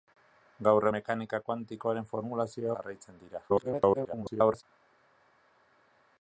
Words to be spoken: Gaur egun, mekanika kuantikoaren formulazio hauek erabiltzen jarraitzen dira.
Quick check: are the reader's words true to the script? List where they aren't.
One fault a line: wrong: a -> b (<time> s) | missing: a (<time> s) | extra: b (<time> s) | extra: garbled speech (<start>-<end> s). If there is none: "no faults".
missing: egun (0.8 s)
missing: hauek erabiltzen (2.7 s)
extra: garbled speech (3.5-4.6 s)